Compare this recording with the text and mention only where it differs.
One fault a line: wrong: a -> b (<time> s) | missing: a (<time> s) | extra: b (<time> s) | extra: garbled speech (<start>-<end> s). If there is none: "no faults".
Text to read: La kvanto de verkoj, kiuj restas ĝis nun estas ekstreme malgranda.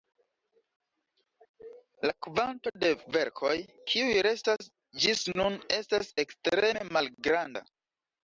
no faults